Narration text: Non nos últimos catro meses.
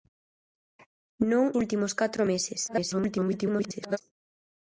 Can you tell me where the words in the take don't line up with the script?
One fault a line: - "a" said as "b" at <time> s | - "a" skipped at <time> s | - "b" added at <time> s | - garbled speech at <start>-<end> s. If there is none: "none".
- "nos" skipped at 1.4 s
- garbled speech at 2.7-4.0 s